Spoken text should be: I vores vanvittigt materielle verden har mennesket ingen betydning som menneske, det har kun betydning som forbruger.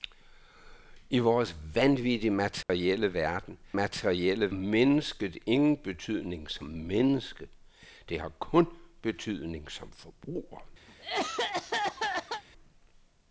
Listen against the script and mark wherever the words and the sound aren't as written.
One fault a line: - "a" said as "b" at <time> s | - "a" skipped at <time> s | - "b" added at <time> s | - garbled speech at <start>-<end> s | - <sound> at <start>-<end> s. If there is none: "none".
- dropout at 2.6-2.7 s
- "har" said as "materielle" at 3.7 s
- cough at 10.9-12.4 s